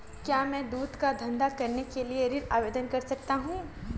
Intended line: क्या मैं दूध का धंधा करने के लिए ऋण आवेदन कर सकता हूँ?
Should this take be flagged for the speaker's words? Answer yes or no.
no